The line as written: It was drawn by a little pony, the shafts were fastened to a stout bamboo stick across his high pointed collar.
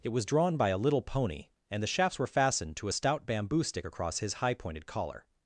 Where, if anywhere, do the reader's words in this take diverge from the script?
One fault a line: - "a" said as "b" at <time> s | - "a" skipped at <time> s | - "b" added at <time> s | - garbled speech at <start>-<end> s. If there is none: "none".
- "and" added at 1.7 s